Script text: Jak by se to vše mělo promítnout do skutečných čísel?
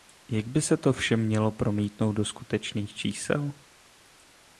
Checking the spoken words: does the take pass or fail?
pass